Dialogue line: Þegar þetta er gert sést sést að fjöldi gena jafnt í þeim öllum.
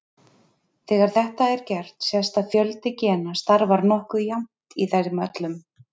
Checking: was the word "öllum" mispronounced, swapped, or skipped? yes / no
no